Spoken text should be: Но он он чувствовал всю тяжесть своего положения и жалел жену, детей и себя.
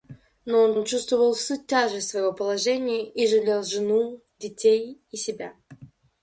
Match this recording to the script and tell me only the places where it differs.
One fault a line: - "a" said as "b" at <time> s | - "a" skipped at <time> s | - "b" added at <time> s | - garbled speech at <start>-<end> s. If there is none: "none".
none